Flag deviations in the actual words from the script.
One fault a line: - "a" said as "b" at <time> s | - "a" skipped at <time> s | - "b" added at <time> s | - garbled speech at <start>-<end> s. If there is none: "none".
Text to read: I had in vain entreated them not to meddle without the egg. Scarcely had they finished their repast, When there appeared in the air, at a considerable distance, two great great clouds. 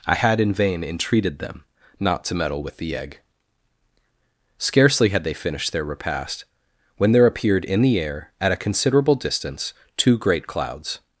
- "without" said as "with" at 2.6 s
- "great" skipped at 10.5 s